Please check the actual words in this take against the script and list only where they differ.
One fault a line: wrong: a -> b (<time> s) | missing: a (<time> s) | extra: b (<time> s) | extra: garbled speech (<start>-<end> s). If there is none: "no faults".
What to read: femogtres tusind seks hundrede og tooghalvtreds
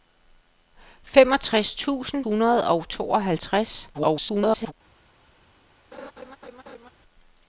missing: seks (2.2 s)
extra: garbled speech (3.9-4.7 s)